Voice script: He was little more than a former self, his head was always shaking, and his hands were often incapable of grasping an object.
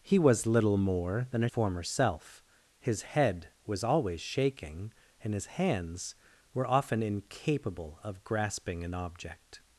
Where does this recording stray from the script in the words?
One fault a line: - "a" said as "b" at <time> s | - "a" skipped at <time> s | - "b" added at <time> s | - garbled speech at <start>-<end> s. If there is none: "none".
none